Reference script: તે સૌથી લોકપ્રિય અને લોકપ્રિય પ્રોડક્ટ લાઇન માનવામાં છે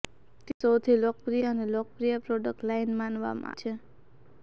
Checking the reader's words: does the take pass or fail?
pass